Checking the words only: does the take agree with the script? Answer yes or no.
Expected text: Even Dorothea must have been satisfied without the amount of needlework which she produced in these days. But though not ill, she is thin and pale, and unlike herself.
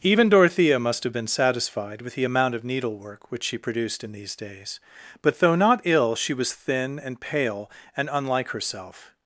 no